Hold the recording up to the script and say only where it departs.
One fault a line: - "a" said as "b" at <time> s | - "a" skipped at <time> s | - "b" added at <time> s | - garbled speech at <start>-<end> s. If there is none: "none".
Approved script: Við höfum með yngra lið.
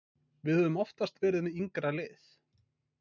- "oftast verið" added at 0.8 s